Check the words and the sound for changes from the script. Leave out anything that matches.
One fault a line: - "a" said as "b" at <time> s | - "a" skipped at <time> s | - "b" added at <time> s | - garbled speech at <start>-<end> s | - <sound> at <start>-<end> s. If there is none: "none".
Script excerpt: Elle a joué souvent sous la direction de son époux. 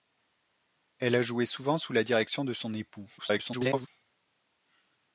- garbled speech at 3.2-3.9 s